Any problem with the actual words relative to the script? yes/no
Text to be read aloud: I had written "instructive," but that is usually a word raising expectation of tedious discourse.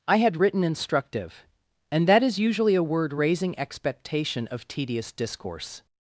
yes